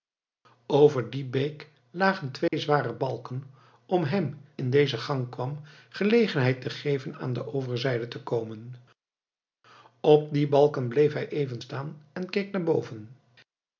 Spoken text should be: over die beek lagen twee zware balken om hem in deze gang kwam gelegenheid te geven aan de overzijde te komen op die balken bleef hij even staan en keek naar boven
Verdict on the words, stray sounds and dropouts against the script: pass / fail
fail